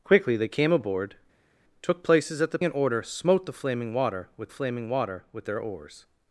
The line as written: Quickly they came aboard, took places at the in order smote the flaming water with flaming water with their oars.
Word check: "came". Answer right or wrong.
right